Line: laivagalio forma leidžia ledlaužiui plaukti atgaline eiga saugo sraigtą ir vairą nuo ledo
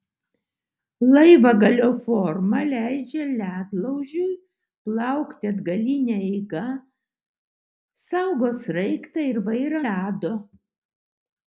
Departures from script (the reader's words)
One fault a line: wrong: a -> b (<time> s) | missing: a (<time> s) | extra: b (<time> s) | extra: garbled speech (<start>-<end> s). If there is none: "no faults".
missing: nuo (9.8 s)